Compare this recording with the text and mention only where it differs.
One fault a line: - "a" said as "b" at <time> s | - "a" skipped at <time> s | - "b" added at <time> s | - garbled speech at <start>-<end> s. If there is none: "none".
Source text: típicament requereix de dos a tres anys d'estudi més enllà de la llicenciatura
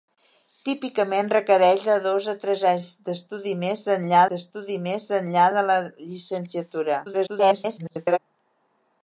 - "d'estudi més enllà" added at 4.3 s
- garbled speech at 7.0-8.2 s